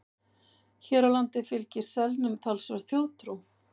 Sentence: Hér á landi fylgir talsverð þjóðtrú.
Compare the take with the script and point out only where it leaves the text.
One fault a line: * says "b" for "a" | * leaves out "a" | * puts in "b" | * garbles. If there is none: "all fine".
* puts in "selnum"